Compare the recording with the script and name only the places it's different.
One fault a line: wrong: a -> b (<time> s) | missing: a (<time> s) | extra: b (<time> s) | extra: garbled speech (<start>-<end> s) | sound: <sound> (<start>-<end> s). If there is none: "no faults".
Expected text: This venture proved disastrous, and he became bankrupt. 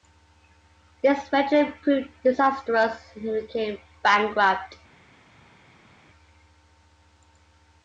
no faults